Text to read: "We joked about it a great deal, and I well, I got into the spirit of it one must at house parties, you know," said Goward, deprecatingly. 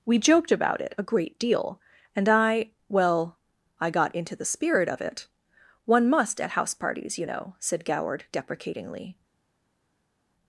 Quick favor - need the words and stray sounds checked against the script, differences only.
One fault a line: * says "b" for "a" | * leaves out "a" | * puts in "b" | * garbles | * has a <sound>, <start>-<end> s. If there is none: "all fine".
all fine